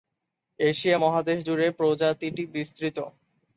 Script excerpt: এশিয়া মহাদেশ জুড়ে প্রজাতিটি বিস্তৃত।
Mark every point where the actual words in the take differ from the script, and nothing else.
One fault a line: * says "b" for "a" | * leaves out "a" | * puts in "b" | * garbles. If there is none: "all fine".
all fine